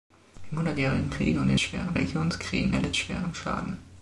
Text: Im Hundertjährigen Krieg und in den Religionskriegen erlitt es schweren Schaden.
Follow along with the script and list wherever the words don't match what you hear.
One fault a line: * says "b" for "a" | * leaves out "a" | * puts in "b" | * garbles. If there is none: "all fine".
* says "schweren" for "den"
* leaves out "es"